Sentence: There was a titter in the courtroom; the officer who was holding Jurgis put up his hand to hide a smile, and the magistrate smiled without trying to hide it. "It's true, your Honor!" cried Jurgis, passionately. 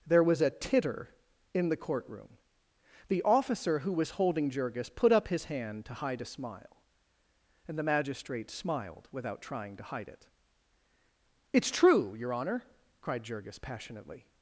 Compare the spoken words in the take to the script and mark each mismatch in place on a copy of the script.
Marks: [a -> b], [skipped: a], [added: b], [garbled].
There was a titter in the courtroom; the officer who was holding Jurgis put up his hand to hide a smile, and the magistrate smiled without trying to hide it. "It's true, your Honor!" cried Jurgis, passionately.